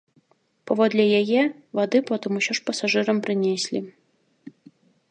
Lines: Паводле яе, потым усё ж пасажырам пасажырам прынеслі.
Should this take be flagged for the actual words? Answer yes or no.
yes